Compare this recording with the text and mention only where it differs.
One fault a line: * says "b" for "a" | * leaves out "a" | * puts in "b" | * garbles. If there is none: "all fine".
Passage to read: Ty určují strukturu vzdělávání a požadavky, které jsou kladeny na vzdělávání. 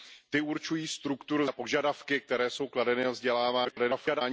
* leaves out "vzdělávání"
* garbles